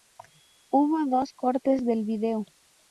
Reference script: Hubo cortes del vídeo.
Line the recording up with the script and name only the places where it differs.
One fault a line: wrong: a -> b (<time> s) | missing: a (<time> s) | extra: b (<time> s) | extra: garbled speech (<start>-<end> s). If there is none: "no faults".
extra: dos (1.1 s)